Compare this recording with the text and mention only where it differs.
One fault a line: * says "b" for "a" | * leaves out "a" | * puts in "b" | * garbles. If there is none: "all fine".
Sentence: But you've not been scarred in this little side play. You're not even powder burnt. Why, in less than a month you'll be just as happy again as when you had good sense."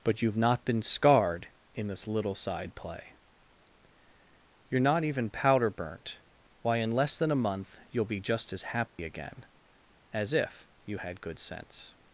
* says "if" for "when"